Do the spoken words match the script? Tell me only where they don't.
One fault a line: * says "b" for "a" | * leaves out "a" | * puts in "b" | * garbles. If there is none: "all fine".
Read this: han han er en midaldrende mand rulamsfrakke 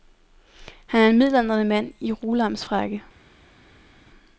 * leaves out "han"
* puts in "i"